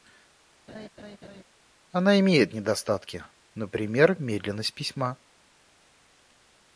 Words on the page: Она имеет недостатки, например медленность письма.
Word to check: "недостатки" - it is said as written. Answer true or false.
true